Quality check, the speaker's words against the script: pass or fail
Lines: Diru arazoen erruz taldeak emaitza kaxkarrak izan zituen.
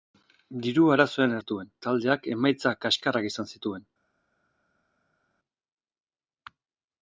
fail